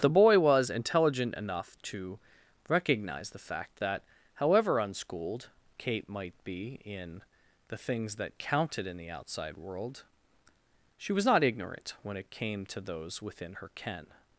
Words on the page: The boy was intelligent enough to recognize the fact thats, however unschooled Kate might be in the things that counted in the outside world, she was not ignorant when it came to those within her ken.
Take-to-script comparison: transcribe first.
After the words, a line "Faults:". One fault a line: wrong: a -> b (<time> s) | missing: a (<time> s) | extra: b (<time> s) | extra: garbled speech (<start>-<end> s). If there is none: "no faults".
The boy was intelligent enough to recognize the fact that, however unschooled Kate might be in the things that counted in the outside world, she was not ignorant when it came to those within her ken.
Faults:
wrong: thats -> that (3.8 s)